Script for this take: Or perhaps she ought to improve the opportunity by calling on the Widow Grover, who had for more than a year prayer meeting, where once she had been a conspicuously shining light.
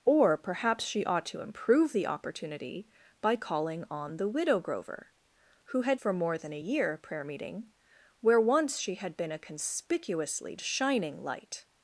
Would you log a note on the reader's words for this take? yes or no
no